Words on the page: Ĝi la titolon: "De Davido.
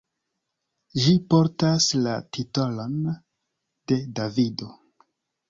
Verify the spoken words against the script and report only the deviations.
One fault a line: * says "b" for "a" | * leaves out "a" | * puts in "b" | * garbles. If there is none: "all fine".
* puts in "portas"